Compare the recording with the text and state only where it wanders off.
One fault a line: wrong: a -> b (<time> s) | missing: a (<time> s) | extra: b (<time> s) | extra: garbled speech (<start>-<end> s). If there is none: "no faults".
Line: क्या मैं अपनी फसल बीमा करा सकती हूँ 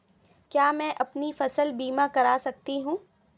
no faults